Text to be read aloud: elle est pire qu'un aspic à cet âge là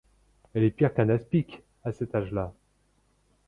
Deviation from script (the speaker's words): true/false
false